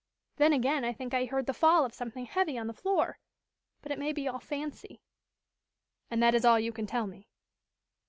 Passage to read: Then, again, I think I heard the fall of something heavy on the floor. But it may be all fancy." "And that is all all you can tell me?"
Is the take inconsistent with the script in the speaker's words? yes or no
yes